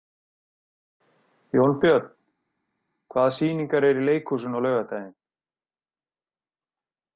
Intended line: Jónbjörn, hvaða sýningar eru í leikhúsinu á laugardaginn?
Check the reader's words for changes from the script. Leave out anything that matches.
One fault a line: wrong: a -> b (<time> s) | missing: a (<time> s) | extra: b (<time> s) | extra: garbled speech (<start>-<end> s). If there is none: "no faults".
no faults